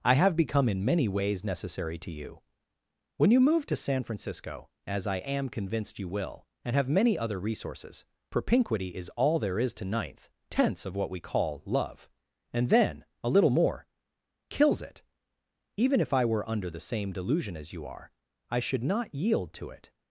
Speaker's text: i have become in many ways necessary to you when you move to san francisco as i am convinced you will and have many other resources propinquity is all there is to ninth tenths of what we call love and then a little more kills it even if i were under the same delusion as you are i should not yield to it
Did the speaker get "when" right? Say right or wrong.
right